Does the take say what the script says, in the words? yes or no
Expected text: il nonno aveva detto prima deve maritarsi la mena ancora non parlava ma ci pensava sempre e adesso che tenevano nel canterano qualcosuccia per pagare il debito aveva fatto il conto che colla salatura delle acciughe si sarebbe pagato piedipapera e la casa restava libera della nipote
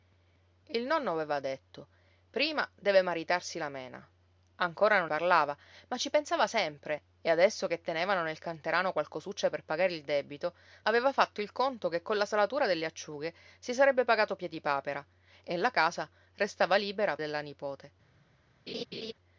yes